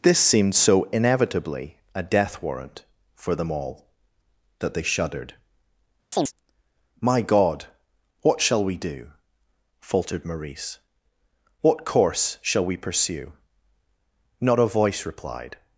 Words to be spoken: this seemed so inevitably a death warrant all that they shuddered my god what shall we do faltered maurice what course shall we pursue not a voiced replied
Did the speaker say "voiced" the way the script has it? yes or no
no